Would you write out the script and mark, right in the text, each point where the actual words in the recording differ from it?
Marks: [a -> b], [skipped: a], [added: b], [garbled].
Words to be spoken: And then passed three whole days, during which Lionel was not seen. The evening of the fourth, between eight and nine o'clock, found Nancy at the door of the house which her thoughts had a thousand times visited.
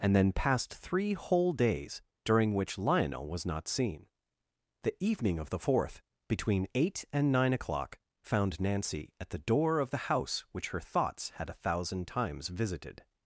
And then passed three whole days, during which Lionel was not seen. The evening of the fourth, between eight and nine o'clock, found Nancy at the door of the house which her thoughts had a thousand times visited.